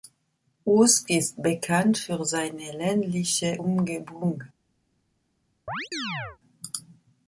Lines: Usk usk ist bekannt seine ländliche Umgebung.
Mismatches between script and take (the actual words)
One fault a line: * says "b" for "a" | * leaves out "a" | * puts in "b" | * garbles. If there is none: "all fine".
* leaves out "usk"
* puts in "für"